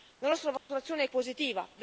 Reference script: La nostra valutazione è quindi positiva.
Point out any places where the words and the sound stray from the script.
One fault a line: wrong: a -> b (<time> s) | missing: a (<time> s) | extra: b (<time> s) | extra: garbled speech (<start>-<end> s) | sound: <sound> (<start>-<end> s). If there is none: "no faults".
sound: dropout (0.6-0.7 s)
missing: quindi (1.1 s)